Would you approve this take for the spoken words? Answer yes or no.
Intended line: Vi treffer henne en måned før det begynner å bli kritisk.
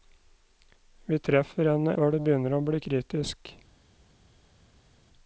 no